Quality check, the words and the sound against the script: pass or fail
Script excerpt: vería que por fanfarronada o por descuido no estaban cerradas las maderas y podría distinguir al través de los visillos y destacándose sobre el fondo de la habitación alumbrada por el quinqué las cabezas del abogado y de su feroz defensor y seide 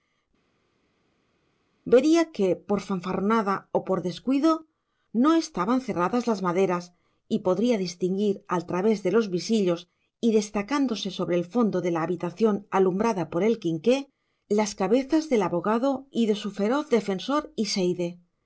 pass